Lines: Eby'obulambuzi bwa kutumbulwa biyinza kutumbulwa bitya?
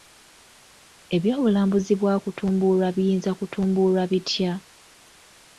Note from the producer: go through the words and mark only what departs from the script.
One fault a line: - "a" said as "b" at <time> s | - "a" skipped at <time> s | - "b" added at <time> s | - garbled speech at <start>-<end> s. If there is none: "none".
none